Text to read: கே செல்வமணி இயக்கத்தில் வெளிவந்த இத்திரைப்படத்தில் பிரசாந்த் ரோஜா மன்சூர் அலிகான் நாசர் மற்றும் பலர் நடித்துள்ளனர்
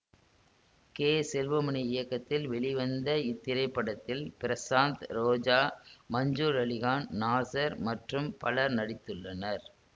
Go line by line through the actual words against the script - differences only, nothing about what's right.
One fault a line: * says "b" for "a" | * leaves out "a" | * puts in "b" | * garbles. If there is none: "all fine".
all fine